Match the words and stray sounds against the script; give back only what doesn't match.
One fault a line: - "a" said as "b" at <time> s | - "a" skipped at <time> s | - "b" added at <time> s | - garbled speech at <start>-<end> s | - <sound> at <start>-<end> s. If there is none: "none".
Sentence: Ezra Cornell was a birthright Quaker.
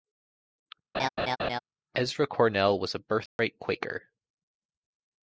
- laugh at 0.9-1.6 s
- dropout at 3.3-3.4 s